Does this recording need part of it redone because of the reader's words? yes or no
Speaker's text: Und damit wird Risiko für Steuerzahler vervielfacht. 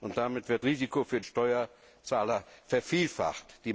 no